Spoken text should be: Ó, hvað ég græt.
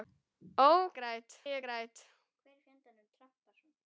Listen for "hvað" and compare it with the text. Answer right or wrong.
wrong